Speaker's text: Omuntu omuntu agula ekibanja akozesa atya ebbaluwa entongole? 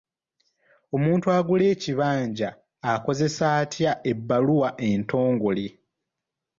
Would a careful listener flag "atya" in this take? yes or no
no